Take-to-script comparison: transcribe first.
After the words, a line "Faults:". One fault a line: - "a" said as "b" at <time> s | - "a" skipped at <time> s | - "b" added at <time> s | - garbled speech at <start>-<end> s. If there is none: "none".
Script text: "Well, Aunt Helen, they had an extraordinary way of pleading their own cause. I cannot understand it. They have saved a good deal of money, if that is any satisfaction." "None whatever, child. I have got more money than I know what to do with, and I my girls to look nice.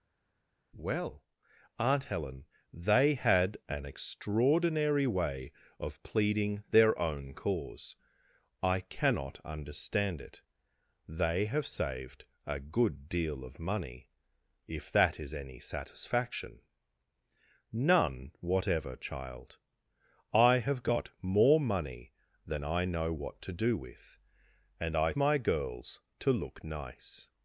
"Well, Aunt Helen, they had an extraordinary way of pleading their own cause. I cannot understand it. They have saved a good deal of money, if that is any satisfaction." "None whatever, child. I have got more money than I know what to do with, and I my girls to look nice.
Faults:
none